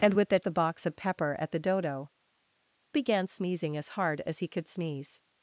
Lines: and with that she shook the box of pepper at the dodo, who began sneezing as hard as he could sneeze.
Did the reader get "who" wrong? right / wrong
wrong